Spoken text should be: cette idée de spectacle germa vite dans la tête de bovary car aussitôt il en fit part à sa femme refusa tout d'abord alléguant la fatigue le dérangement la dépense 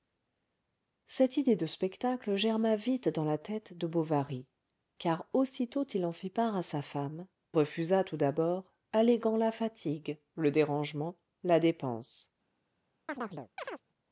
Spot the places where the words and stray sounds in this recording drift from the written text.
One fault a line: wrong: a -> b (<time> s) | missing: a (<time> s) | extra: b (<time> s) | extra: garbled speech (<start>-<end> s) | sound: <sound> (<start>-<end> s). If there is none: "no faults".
sound: chirp (13.1-13.8 s)